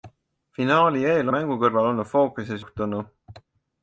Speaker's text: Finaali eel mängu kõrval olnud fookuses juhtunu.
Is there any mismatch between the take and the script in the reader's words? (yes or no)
no